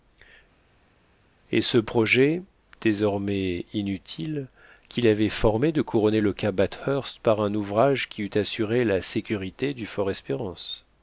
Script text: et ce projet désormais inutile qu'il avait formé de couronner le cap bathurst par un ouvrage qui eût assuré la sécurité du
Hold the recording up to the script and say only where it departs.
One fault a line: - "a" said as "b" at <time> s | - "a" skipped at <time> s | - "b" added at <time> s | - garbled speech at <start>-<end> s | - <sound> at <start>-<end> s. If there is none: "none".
none